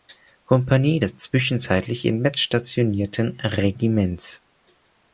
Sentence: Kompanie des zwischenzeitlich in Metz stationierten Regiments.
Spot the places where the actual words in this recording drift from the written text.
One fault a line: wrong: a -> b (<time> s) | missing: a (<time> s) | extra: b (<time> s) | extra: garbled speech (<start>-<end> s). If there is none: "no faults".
no faults